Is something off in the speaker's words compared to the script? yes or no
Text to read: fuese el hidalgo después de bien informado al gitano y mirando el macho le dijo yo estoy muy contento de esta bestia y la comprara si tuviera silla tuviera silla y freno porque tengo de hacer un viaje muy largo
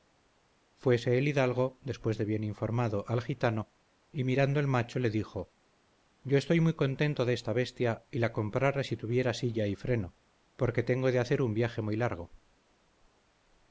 yes